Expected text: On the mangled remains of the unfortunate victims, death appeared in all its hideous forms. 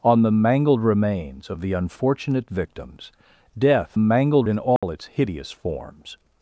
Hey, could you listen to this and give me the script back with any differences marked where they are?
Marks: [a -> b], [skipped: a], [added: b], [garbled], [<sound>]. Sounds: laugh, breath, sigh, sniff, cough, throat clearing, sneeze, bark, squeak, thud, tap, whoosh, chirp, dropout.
On the mangled remains of the unfortunate victims, death [appeared -> mangled] in all [dropout] its hideous forms.